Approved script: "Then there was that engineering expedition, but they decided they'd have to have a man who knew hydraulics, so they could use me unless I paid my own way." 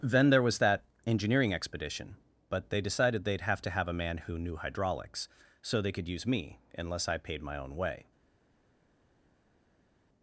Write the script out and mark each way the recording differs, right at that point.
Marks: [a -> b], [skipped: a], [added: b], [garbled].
"Then there was that engineering expedition, but they decided they'd have to have a man who knew hydraulics, so they could use me unless I paid my own way."